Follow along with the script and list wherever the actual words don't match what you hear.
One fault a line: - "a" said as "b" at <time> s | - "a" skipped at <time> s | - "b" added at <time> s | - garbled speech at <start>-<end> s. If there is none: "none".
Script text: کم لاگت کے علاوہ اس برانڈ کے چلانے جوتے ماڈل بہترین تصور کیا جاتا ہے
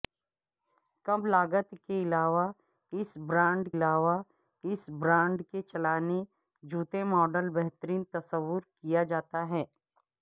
- "علاوہ اس برانڈ" added at 3.7 s